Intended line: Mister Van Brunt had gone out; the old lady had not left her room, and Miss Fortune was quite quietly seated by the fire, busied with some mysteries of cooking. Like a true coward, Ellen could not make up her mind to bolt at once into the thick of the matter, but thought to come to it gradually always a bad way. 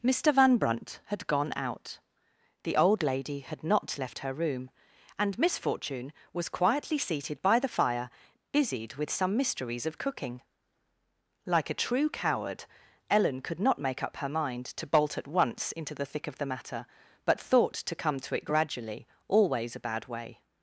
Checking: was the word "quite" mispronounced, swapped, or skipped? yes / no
yes